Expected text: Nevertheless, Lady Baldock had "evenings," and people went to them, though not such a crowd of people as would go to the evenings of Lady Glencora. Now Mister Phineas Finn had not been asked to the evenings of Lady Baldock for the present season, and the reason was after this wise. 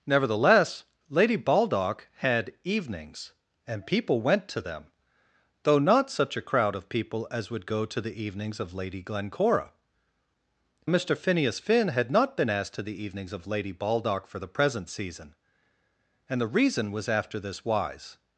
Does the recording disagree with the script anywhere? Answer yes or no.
yes